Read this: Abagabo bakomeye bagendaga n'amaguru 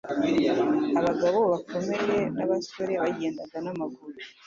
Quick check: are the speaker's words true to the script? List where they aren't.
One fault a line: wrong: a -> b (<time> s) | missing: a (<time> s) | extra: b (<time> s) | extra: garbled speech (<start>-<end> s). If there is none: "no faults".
extra: n'abasore (2.4 s)